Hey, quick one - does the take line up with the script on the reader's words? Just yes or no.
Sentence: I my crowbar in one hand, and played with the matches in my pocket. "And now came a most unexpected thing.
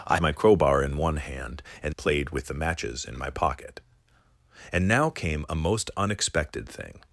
yes